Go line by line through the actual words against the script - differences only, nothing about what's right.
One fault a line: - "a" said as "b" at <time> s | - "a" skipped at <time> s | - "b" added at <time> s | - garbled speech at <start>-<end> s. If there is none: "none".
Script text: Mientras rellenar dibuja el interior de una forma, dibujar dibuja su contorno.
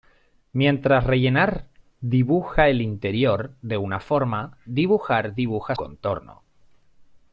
- "su" skipped at 5.8 s